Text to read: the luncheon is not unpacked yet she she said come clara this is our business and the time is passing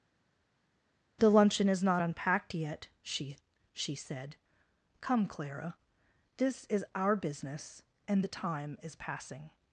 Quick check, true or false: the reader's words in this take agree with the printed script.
true